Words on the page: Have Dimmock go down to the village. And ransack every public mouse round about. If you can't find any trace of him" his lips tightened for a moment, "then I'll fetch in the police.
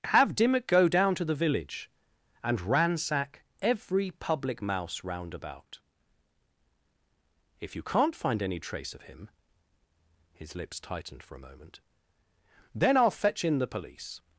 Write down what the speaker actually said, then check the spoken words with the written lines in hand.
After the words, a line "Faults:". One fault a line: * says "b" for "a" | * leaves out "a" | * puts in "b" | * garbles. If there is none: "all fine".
Have Dimmock go down to the village. And ransack every public mouse round about. If you can't find any trace of him" his lips tightened for a moment, "then I'll fetch in the police.
Faults:
all fine